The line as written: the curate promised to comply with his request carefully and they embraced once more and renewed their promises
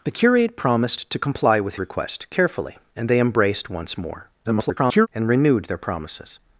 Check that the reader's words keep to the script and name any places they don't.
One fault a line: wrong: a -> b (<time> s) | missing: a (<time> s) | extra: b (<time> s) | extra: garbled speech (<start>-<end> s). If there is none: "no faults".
missing: his (1.8 s)
extra: garbled speech (4.4-5.1 s)